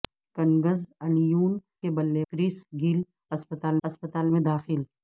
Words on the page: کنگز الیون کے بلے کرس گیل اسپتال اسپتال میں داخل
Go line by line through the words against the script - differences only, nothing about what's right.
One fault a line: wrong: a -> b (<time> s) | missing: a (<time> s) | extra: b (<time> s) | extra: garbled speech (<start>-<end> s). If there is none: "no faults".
no faults